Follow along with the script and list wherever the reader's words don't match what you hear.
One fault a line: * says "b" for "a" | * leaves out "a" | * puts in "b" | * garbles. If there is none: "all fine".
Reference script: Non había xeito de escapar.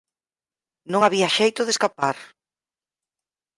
all fine